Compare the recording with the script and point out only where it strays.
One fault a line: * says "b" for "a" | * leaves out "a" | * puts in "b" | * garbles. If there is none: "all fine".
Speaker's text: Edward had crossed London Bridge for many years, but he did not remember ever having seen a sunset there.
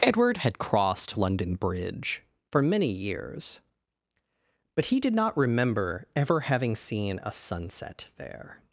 all fine